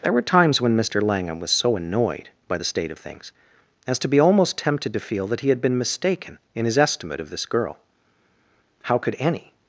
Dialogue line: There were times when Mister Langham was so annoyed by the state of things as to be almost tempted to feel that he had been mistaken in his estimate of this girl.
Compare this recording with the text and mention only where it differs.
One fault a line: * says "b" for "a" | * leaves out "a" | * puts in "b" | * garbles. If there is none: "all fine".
* puts in "How could any"